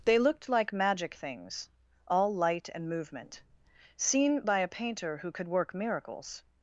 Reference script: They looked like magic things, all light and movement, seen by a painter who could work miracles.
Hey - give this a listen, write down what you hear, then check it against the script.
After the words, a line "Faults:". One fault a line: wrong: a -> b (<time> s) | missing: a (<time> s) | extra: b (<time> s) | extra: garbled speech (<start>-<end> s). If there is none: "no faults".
They looked like magic things, all light and movement, seen by a painter who could work miracles.
Faults:
no faults